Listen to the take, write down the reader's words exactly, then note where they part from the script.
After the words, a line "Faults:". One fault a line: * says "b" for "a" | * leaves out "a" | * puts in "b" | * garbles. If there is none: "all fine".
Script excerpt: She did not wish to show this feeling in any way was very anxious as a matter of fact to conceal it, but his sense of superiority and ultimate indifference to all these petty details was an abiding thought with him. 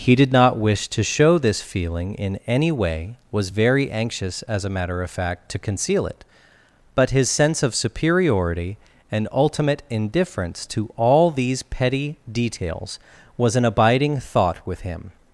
He did not wish to show this feeling in any way was very anxious as a matter of fact to conceal it, but his sense of superiority and ultimate indifference to all these petty details was an abiding thought with him.
Faults:
* says "He" for "She"